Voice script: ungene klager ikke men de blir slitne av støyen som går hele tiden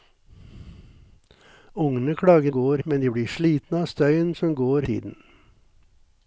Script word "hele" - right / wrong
wrong